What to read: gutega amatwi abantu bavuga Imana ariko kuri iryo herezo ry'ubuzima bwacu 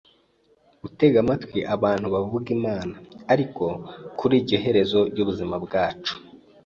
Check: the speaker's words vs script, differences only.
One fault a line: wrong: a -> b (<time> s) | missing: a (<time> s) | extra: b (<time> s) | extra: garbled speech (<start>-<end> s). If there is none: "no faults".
no faults